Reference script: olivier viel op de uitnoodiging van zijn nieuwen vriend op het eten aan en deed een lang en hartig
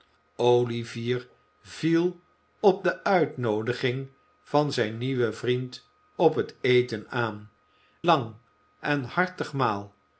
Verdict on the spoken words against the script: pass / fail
fail